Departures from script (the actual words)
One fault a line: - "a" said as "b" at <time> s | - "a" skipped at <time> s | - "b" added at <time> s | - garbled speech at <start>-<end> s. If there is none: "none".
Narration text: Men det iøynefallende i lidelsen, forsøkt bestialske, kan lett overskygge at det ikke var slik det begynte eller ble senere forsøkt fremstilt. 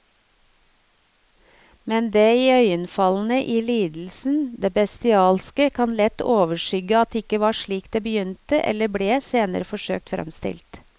- "forsøkt" said as "det" at 4.6 s